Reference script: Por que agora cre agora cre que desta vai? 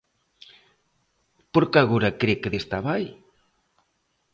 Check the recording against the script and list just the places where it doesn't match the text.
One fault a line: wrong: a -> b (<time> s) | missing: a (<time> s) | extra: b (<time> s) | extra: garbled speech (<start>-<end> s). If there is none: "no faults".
missing: agora cre (2.3 s)